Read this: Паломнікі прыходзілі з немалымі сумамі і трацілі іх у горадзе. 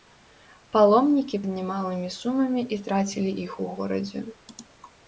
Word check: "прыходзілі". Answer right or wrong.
wrong